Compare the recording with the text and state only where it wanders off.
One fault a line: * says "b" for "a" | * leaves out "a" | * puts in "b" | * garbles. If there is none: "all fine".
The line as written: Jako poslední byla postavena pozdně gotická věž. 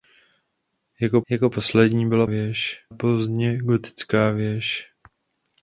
* puts in "jako"
* says "věž" for "postavena"